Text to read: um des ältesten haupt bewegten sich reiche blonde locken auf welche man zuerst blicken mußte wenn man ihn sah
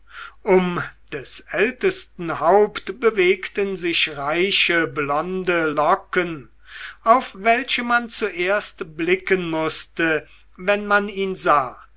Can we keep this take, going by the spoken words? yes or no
yes